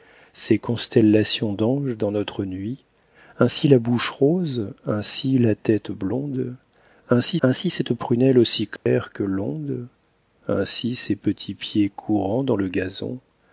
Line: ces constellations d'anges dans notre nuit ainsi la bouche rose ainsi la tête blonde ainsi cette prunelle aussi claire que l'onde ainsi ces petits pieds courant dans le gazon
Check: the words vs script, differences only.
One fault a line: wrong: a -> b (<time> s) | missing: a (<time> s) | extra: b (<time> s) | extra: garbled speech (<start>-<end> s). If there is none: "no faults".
extra: ainsi (7.4 s)